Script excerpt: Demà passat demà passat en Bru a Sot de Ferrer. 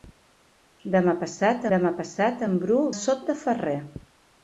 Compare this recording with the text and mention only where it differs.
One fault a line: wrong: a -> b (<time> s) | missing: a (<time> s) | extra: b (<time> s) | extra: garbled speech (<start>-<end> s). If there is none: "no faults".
no faults